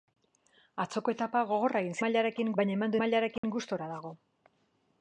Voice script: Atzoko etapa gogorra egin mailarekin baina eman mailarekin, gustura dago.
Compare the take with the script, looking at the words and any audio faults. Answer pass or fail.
fail